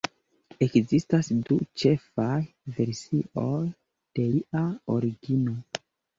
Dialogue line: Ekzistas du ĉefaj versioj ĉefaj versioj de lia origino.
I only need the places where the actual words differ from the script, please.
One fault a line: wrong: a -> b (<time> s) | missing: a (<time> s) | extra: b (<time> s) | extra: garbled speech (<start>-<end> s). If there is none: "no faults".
missing: ĉefaj versioj (3.6 s)